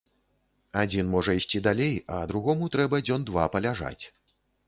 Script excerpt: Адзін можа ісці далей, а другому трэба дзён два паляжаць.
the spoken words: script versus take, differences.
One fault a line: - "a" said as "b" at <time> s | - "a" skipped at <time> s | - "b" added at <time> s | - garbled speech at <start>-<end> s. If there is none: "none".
none